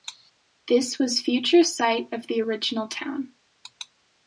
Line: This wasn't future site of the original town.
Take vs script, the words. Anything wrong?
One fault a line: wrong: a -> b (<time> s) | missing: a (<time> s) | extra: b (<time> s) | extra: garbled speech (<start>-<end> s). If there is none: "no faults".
wrong: wasn't -> was (1.0 s)